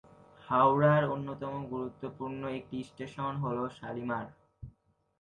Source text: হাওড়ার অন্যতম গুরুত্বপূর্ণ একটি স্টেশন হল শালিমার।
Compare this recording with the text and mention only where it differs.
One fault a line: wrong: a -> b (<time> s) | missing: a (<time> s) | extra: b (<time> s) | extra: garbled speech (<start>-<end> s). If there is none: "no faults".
no faults